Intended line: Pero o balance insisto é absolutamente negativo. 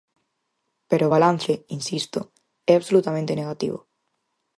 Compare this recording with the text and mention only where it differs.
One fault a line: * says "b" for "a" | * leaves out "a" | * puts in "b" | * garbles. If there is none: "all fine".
all fine